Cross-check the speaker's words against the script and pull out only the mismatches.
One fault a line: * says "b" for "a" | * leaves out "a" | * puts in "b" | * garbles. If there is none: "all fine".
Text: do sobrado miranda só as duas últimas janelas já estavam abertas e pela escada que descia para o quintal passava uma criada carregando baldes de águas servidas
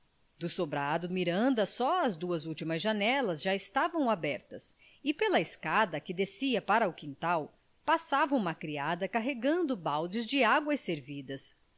all fine